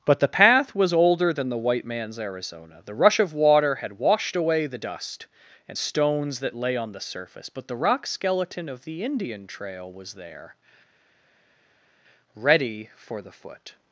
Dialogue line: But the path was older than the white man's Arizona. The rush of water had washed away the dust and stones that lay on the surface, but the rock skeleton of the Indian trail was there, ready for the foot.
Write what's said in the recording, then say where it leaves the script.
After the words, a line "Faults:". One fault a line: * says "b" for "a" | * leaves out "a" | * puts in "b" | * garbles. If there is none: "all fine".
But the path was older than the white man's Arizona. The rush of water had washed away the dust and stones that lay on the surface, but the rock skeleton of the Indian trail was there, ready for the foot.
Faults:
all fine